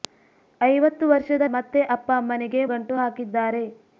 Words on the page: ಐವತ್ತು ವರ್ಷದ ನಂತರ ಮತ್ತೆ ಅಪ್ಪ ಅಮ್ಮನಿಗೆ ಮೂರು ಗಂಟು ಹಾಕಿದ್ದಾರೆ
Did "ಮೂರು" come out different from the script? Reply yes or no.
yes